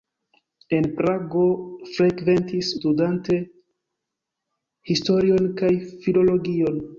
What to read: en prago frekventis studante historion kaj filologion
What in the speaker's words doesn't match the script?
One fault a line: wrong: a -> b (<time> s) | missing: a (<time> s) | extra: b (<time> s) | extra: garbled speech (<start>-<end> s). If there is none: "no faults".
no faults